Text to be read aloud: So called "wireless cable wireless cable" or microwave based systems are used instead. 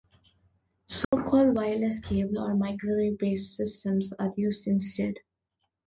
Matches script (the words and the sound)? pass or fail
fail